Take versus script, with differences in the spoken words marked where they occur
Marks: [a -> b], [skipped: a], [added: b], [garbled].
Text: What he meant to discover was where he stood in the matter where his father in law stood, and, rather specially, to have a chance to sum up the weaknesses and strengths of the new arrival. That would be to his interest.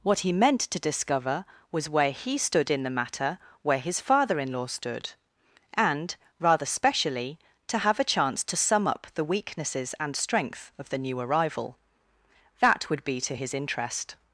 What he meant to discover was where he stood in the matter where his father in law stood, and, rather specially, to have a chance to sum up the weaknesses and [strengths -> strength] of the new arrival. That would be to his interest.